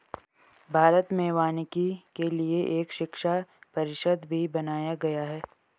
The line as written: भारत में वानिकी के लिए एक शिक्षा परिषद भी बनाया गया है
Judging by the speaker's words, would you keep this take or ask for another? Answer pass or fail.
pass